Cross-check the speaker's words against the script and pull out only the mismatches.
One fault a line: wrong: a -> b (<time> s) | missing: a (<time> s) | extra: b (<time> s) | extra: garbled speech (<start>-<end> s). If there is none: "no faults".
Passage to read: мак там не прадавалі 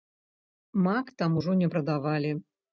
extra: ужо (1.4 s)